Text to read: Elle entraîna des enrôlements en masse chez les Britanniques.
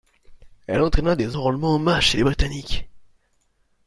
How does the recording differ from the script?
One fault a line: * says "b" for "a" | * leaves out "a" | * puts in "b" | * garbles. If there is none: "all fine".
all fine